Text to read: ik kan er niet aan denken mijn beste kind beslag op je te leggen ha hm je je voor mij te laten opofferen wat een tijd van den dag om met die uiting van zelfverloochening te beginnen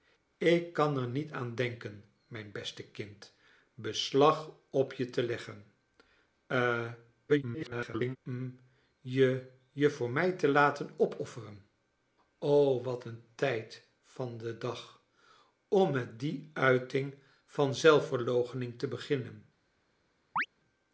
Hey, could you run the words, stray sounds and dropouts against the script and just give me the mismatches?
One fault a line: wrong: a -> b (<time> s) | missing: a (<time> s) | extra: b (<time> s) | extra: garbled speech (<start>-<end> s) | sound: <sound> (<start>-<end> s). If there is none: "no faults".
extra: garbled speech (7.3-8.2 s)
sound: chirp (20.4-20.5 s)